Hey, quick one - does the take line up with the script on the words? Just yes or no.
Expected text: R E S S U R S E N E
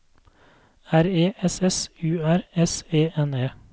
yes